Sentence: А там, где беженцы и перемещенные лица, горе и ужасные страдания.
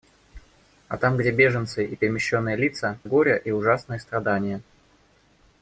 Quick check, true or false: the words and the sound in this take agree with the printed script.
true